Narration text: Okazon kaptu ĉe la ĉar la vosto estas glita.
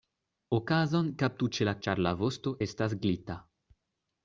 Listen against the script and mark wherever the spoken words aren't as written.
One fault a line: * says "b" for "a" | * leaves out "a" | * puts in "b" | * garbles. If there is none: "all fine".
all fine